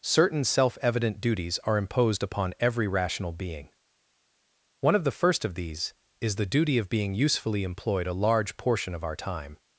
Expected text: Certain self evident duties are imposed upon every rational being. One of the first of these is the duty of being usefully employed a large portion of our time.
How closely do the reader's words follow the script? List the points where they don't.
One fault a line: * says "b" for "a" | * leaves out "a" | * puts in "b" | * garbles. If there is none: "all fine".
all fine